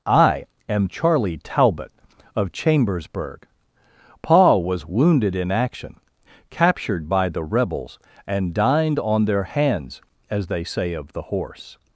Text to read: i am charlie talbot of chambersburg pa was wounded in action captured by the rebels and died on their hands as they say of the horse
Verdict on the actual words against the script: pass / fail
fail